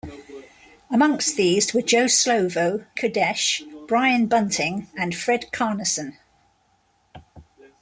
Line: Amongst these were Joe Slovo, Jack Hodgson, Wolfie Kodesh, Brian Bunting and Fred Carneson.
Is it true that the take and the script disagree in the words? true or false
true